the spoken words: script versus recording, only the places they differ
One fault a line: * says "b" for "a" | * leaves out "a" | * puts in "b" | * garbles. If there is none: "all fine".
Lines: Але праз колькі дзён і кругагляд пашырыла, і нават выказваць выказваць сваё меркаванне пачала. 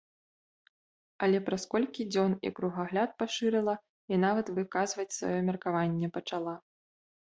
* leaves out "выказваць"